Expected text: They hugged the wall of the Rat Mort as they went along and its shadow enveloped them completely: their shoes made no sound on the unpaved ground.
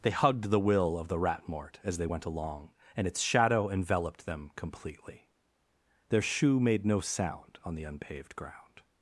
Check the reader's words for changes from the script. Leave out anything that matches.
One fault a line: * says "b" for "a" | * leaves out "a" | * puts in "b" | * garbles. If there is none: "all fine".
* says "will" for "wall"
* says "shoe" for "shoes"